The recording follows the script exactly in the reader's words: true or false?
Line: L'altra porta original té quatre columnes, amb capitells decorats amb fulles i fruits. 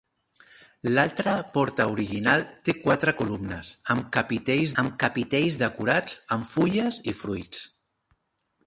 false